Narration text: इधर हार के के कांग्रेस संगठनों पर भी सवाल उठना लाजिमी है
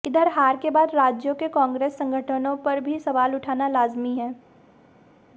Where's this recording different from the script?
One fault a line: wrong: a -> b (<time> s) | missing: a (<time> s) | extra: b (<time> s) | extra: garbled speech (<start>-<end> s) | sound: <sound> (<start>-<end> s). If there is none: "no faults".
extra: बाद राज्यों (0.7 s)